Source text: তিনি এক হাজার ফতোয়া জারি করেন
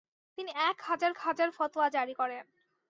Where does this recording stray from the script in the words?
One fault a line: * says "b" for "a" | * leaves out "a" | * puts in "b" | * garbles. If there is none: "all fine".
* puts in "হাজার"